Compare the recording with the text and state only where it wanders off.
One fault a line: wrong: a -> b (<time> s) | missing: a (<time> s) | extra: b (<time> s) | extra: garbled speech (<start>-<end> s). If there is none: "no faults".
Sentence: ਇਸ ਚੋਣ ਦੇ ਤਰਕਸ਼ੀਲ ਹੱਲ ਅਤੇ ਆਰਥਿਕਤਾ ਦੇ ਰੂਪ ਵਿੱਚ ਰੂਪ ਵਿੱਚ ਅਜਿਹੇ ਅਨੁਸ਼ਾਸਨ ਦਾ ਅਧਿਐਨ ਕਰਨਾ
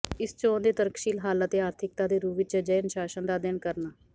missing: ਰੂਪ ਵਿੱਚ (2.6 s)